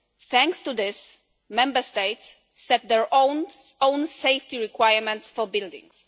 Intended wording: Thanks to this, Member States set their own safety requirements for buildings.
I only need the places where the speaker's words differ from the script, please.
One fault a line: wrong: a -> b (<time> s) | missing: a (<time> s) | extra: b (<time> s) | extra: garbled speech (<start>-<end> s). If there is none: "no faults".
no faults